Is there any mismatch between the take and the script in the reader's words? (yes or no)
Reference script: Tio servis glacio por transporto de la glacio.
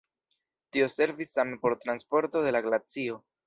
yes